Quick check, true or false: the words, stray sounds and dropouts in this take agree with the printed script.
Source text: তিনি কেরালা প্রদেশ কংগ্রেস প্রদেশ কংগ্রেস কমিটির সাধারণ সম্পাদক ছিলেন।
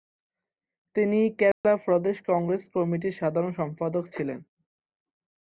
false